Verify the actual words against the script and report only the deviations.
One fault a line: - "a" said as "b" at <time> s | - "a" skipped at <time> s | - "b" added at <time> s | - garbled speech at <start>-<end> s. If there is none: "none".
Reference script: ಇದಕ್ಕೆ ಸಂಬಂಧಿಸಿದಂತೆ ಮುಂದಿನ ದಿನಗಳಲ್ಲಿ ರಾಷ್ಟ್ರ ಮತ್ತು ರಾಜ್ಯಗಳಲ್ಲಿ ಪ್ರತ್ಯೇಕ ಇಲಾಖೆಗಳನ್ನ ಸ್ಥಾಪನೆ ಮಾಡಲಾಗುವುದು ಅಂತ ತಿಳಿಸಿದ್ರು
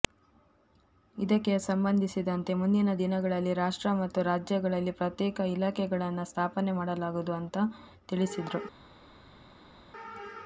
none